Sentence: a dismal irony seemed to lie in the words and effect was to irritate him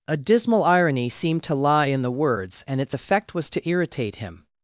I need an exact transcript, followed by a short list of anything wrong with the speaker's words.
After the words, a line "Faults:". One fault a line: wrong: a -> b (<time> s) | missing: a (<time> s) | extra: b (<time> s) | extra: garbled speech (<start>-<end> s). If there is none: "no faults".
a dismal irony seemed to lie in the words and its effect was to irritate him
Faults:
extra: its (2.8 s)